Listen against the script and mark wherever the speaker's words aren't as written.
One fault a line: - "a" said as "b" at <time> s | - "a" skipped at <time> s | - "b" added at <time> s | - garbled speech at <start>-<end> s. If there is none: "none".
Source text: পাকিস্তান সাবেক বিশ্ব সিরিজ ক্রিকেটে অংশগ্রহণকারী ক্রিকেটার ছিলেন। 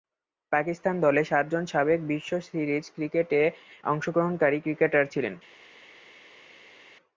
- "দলে সাতজন" added at 1.1 s